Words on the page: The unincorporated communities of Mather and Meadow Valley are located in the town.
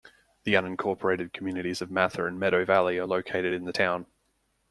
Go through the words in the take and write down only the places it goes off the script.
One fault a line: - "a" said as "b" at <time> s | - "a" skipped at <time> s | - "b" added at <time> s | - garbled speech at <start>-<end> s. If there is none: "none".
none